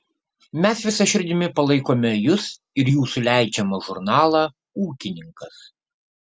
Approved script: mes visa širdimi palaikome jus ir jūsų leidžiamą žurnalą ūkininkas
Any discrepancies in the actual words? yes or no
no